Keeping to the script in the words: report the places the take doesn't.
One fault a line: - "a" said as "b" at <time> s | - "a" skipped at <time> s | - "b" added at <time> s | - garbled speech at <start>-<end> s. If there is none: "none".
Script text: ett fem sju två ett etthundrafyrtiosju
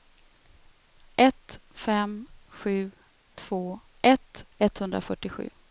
none